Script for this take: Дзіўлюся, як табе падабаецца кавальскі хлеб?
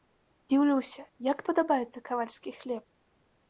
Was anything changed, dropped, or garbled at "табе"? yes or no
yes